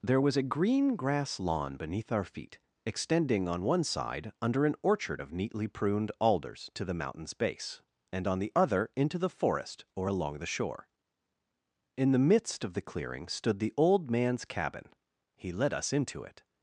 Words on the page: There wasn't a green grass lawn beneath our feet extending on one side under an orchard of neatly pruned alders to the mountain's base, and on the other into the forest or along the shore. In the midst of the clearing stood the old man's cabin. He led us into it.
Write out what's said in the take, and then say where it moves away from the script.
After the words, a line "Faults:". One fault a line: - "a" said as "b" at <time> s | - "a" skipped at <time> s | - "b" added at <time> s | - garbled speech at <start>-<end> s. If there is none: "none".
There was a green grass lawn beneath our feet extending on one side under an orchard of neatly pruned alders to the mountain's base, and on the other into the forest or along the shore. In the midst of the clearing stood the old man's cabin. He led us into it.
Faults:
- "wasn't" said as "was" at 0.2 s